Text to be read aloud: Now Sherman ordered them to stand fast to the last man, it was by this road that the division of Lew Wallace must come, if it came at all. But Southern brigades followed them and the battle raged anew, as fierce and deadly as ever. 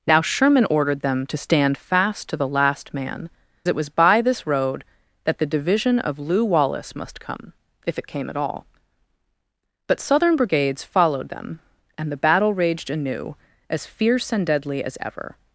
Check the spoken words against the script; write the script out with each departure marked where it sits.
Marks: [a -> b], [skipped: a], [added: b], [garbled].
Now Sherman ordered them to stand fast to the last man, it was by this road that the division of Lew Wallace must come, if it came at all. But Southern brigades followed them and the battle raged anew, as fierce and deadly as ever.